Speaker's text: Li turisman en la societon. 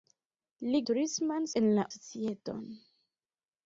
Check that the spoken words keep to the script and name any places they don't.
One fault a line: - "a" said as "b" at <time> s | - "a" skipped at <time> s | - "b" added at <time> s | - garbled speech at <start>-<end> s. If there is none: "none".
none